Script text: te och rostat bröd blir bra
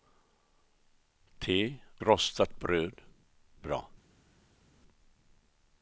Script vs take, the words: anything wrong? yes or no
yes